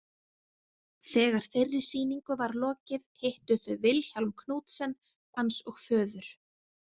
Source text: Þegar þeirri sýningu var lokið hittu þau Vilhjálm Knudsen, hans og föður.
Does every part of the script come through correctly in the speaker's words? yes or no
yes